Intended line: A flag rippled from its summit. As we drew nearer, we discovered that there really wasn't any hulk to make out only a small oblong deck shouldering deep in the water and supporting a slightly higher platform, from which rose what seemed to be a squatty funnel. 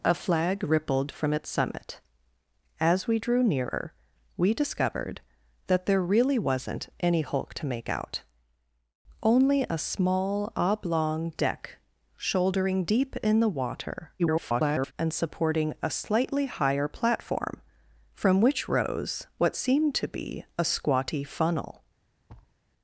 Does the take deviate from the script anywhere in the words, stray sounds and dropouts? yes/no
yes